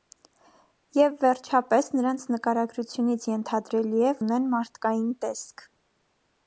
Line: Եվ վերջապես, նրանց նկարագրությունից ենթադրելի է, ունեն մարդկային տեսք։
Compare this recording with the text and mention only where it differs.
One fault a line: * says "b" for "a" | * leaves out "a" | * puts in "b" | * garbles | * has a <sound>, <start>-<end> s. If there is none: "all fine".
all fine